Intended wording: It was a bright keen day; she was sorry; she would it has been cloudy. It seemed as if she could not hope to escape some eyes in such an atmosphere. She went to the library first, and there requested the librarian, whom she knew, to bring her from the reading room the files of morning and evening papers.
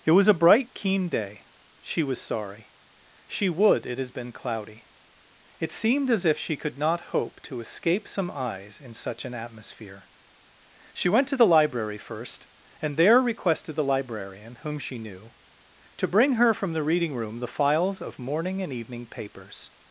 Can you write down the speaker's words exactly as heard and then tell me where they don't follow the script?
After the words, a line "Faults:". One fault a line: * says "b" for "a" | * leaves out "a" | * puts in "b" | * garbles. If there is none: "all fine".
It was a bright keen day; she was sorry; she would it has been cloudy. It seemed as if she could not hope to escape some eyes in such an atmosphere. She went to the library first, and there requested the librarian, whom she knew, to bring her from the reading room the files of morning and evening papers.
Faults:
all fine